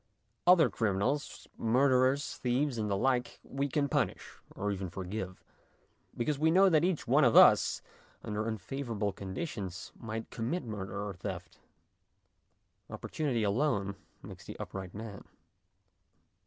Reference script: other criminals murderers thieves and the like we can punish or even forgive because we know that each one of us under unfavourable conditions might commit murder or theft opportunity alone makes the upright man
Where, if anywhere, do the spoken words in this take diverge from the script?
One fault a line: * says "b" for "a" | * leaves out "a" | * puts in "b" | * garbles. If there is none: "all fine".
all fine